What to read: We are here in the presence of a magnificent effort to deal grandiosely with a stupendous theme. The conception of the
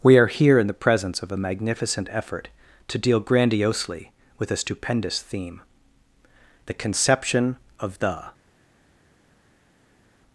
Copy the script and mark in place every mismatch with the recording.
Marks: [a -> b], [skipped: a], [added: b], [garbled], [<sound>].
We are here in the presence of a magnificent effort to deal grandiosely with a stupendous theme. The conception of the